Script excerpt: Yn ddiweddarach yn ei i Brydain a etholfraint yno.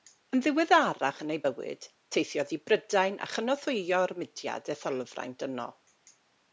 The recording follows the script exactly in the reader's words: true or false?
false